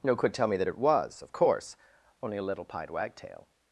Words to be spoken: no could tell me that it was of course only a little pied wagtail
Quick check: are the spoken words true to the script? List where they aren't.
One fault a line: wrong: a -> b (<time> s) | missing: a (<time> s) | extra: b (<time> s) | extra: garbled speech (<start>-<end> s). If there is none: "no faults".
no faults